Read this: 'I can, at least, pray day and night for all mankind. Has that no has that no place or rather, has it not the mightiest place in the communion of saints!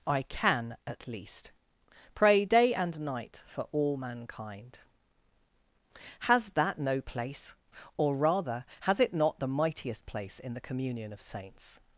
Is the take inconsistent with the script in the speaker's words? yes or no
yes